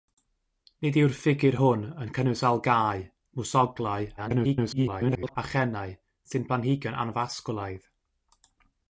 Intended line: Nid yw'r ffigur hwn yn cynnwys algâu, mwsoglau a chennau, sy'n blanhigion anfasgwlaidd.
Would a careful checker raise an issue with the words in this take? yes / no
yes